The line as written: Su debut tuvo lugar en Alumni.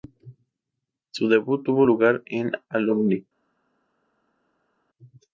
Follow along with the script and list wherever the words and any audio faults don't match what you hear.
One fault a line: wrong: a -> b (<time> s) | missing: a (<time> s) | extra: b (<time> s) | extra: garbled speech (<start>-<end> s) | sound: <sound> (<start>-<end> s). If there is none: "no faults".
no faults